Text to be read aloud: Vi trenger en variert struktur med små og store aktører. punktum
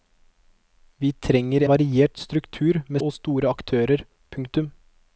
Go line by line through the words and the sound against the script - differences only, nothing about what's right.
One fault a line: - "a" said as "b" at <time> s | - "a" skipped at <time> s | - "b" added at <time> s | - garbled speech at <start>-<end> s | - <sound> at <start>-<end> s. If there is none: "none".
- "en" skipped at 1.6 s
- "små" skipped at 3.0 s